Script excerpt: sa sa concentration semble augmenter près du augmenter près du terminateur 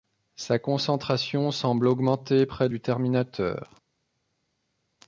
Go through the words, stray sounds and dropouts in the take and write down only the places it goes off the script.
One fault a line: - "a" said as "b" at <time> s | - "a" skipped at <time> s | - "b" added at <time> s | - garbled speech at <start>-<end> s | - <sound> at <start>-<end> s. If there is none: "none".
- "sa" skipped at 0.6 s
- "augmenter près du" skipped at 2.8 s